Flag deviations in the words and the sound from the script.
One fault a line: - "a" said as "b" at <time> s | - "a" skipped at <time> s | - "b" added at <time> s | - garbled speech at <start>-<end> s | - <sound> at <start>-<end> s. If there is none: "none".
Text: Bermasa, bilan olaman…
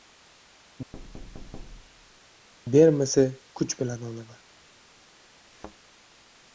- thud at 0.9-2.2 s
- "kuch" added at 3.6 s
- thud at 5.4-5.8 s